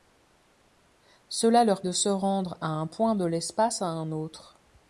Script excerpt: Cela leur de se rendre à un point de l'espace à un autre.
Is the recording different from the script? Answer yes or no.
no